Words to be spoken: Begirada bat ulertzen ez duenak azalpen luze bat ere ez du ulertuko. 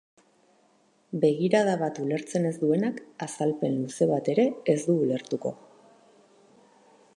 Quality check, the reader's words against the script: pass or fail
pass